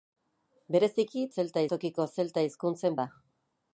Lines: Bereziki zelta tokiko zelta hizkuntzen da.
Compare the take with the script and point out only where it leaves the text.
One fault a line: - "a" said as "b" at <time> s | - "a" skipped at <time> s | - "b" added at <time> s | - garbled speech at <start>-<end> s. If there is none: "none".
none